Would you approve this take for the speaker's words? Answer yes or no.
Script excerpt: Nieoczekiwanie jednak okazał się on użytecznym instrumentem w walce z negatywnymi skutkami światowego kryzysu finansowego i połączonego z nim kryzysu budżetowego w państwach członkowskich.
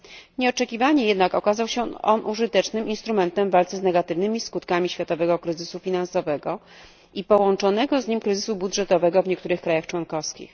no